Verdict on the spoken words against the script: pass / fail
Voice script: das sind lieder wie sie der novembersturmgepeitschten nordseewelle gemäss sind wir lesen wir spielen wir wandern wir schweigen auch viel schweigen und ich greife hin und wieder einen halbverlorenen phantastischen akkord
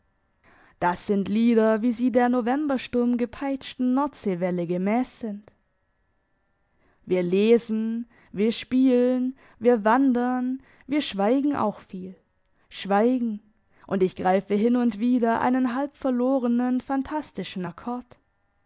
pass